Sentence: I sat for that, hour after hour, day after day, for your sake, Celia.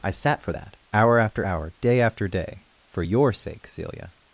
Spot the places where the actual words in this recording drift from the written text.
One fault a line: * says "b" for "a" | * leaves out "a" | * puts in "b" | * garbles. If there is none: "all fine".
all fine